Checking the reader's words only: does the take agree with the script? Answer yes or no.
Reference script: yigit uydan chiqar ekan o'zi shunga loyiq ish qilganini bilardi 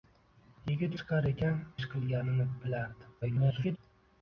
no